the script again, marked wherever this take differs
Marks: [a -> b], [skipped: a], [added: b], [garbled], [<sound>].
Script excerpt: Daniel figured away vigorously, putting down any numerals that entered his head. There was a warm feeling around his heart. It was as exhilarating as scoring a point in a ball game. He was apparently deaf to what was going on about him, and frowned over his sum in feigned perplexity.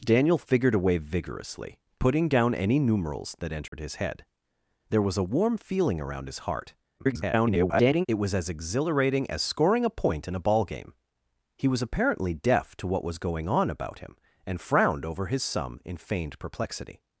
Daniel figured away vigorously, putting down any numerals that entered [dropout] his head. There was a warm feeling around his heart. [garbled] It was as exhilarating as scoring a point in a ball game. He was apparently deaf to what was going on about him, and frowned over his sum in feigned perplexity.